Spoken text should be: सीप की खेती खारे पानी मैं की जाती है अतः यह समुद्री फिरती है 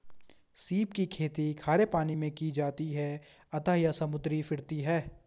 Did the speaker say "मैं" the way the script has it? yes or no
yes